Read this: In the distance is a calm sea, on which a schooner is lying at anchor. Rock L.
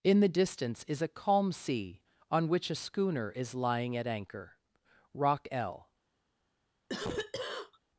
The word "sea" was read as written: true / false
true